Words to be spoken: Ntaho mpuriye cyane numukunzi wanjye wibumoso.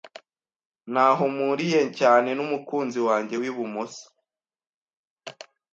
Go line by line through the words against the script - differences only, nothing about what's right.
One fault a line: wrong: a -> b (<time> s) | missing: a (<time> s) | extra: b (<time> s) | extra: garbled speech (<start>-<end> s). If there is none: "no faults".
no faults